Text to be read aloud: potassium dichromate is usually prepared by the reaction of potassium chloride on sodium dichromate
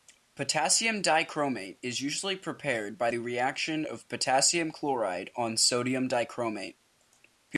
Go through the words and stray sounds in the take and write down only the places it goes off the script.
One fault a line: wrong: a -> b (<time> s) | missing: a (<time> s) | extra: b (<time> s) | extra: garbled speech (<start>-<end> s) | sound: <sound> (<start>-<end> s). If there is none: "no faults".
no faults